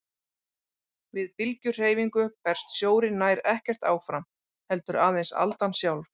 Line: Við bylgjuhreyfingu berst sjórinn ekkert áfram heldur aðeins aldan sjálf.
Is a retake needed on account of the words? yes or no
yes